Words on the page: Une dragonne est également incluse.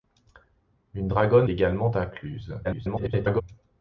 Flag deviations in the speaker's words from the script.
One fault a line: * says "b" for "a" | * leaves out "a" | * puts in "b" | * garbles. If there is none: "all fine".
* leaves out "est"
* garbles